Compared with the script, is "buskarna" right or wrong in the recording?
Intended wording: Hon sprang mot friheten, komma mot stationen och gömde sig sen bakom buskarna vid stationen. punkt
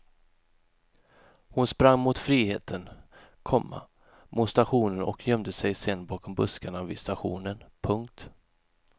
right